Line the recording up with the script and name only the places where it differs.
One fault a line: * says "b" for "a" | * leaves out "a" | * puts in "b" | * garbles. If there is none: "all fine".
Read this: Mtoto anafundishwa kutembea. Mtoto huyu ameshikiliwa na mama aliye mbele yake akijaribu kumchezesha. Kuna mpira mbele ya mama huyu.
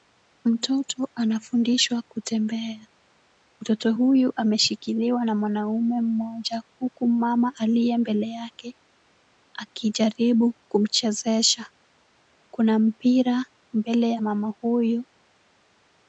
* puts in "mwanaume mmoja huku"